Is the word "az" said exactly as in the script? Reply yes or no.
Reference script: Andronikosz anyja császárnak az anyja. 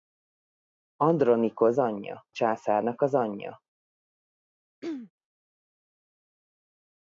yes